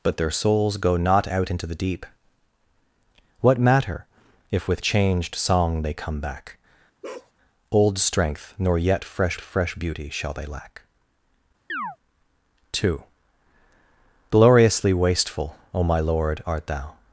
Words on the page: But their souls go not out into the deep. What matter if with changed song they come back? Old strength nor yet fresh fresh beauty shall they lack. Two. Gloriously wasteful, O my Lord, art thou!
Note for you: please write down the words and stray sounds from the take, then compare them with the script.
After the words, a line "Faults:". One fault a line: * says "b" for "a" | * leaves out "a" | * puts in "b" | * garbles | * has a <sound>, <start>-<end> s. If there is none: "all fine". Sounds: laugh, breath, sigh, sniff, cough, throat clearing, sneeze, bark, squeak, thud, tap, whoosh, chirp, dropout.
But their souls go not out into the deep. What matter if with changed song they come back? Old strength nor yet fresh fresh beauty shall they lack. Two. Gloriously wasteful, O my Lord, art thou!
Faults:
* has a bark, 7.0-7.3 s
* has a chirp, 11.7-12.0 s